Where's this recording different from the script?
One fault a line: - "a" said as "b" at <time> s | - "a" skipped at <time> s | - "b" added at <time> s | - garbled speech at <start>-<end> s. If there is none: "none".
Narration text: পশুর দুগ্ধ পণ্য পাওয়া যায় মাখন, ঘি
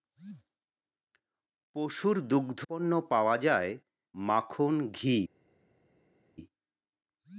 none